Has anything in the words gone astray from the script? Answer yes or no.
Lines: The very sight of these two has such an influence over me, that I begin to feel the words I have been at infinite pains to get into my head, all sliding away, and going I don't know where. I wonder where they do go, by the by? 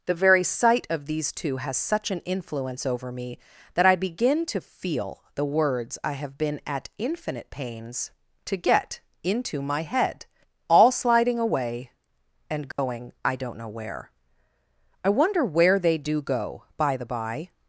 no